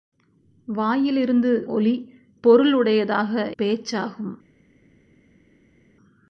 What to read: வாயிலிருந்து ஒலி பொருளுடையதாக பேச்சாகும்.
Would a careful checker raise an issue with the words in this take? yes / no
no